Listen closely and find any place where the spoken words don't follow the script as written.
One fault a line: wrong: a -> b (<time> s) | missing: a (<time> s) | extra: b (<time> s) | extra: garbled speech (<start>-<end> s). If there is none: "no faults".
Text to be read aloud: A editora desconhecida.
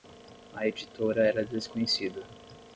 extra: era (1.3 s)